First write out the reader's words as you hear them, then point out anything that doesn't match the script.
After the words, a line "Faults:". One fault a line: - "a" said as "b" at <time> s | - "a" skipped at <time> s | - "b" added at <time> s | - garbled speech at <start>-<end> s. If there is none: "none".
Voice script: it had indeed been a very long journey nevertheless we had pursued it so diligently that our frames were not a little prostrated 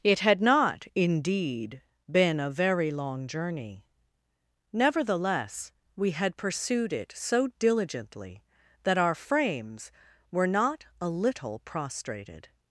it had not indeed been a very long journey nevertheless we had pursued it so diligently that our frames were not a little prostrated
Faults:
- "not" added at 0.4 s